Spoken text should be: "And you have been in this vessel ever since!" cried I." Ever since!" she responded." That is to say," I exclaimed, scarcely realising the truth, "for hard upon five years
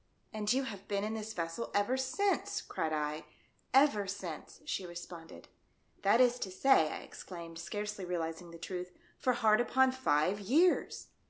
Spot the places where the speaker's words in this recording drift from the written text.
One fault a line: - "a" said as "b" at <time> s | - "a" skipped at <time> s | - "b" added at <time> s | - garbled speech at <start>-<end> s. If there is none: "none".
none